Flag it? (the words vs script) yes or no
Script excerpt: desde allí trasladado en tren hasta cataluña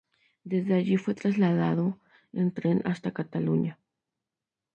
yes